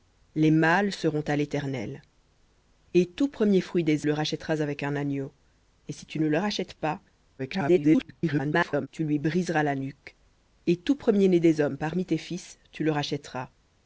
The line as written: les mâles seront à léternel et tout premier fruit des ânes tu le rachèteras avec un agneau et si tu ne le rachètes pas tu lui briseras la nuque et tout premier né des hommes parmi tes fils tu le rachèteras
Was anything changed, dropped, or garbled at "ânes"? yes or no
yes